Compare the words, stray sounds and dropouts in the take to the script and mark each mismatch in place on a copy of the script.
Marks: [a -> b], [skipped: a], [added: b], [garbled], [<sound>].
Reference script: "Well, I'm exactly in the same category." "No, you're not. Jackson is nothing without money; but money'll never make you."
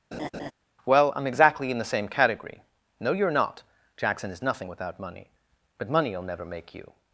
[laugh] "Well, I'm exactly in the same category." "No, you're not. Jackson is nothing without money; but money'll never make you."